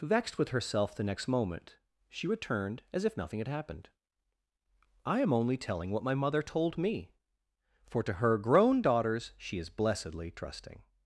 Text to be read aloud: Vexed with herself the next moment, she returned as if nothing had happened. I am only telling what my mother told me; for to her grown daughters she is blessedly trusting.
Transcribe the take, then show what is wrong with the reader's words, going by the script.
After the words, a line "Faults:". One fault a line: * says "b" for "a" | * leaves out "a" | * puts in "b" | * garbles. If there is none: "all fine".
Vexed with herself the next moment, she returned as if nothing had happened. I am only telling what my mother told me; for to her grown daughters she is blessedly trusting.
Faults:
all fine